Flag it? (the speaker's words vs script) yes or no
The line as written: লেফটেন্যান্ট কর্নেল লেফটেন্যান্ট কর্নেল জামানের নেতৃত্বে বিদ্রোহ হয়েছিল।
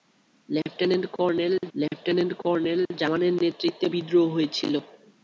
no